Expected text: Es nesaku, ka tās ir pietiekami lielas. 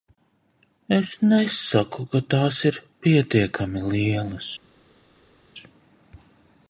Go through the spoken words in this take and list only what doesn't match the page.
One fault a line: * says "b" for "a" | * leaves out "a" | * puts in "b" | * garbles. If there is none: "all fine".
all fine